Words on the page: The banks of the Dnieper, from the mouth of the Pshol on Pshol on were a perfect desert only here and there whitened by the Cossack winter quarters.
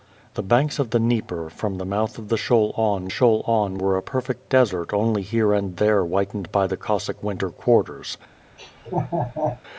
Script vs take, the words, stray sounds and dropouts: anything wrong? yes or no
yes